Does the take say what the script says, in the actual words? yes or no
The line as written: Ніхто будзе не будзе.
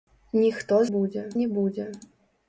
yes